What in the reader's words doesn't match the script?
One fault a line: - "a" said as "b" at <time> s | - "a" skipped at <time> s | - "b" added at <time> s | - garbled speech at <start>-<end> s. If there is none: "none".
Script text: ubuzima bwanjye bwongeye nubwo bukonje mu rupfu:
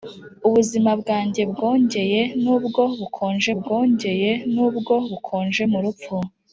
- "bwongeye nubwo bukonje" added at 3.6 s